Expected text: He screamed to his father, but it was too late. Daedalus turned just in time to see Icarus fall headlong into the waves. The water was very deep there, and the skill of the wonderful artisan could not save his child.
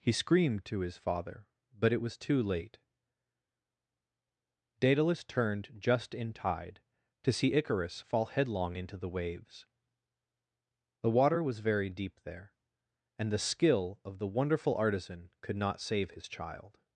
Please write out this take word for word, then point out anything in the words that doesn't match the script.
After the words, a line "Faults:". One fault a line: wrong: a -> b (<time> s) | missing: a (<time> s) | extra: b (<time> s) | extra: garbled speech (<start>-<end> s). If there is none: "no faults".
He screamed to his father, but it was too late. Daedalus turned just in tide to see Icarus fall headlong into the waves. The water was very deep there, and the skill of the wonderful artisan could not save his child.
Faults:
wrong: time -> tide (6.3 s)